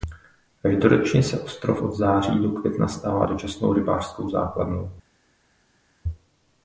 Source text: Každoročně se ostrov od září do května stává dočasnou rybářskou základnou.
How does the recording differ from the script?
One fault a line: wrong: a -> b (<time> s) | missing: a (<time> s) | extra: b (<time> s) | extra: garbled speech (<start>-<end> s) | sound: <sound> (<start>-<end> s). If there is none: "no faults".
no faults